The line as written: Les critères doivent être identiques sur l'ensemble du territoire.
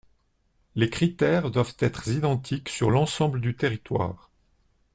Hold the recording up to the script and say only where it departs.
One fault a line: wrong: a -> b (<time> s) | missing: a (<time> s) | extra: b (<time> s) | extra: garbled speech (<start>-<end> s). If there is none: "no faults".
no faults